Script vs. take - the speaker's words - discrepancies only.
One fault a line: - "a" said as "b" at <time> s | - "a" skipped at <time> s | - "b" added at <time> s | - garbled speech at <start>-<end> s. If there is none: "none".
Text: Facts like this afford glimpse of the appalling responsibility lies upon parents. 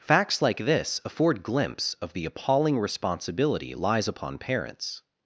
none